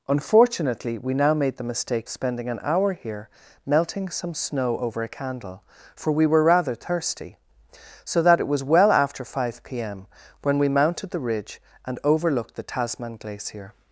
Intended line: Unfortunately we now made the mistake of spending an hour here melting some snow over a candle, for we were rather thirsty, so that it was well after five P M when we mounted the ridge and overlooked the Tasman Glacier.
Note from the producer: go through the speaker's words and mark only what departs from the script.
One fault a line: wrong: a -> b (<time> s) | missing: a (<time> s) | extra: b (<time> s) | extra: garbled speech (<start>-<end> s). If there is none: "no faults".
missing: of (2.1 s)